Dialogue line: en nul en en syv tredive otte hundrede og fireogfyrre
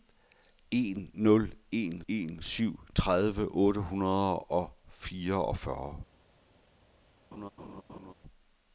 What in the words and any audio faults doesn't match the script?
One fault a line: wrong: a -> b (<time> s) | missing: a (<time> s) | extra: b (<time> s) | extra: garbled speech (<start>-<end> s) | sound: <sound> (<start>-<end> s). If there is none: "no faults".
sound: laugh (7.3-8.1 s)